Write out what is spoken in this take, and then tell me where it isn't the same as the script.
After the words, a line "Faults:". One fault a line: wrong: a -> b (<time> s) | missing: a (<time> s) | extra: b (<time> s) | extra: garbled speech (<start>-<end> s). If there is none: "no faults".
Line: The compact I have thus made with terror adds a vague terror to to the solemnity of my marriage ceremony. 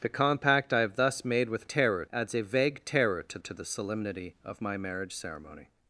The compact I have thus made with terror adds a vague terror to to the solemnity of my marriage ceremony.
Faults:
no faults